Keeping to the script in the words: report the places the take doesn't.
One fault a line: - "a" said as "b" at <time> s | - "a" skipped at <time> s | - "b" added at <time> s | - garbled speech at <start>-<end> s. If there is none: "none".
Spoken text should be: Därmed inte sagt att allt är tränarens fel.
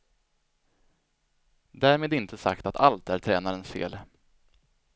none